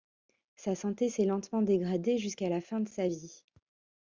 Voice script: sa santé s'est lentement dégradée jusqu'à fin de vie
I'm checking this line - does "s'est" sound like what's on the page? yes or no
yes